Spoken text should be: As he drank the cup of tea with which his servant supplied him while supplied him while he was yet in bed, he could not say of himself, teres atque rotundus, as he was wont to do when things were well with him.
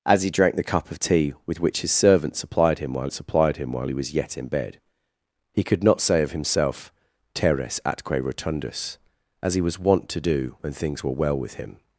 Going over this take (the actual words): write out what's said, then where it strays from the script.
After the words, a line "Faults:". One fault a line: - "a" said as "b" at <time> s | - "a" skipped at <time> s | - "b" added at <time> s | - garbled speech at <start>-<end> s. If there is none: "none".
As he drank the cup of tea with which his servant supplied him while supplied him while he was yet in bed, he could not say of himself, teres atque rotundus, as he was wont to do when things were well with him.
Faults:
none